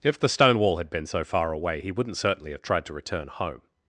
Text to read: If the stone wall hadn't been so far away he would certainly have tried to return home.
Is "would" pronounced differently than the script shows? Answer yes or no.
yes